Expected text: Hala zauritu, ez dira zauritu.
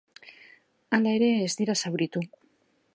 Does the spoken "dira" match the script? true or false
true